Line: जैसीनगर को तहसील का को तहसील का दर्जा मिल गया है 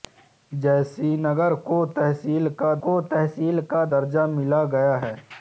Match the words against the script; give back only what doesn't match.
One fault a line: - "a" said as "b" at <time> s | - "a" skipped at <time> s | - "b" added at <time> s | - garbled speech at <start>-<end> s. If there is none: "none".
none